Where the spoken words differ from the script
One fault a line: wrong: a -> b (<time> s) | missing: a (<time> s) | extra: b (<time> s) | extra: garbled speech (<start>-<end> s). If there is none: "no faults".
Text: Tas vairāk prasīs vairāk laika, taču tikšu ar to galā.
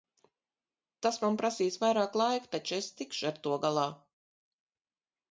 wrong: vairāk -> man (1.2 s)
extra: es (2.8 s)